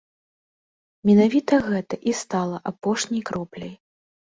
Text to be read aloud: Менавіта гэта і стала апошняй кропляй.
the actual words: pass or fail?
pass